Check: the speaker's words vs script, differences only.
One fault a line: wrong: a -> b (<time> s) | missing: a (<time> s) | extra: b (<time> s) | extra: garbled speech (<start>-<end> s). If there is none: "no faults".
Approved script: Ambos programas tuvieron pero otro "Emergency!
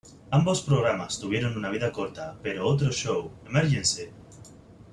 extra: una vida corta (1.6 s)
extra: show (2.9 s)